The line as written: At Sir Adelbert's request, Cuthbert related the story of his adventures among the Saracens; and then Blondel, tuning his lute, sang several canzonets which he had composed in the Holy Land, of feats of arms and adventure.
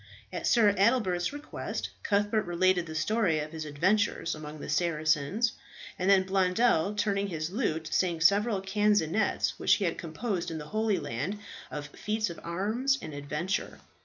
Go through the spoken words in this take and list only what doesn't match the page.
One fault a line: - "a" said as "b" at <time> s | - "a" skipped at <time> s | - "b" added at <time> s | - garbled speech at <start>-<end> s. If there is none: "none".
none